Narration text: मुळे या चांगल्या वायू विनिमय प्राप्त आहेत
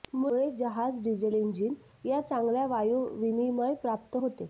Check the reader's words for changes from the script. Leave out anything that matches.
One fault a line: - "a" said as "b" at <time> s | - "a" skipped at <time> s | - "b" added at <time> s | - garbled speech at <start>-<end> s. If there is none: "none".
- "जहाज डिझेल इंजिन" added at 0.5 s
- "आहेत" said as "होते" at 4.2 s